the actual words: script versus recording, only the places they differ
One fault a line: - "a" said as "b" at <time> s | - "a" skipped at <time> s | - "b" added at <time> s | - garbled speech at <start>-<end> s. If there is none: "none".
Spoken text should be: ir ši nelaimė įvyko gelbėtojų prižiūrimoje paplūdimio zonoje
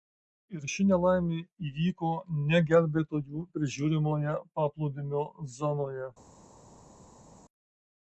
- "ne" added at 2.5 s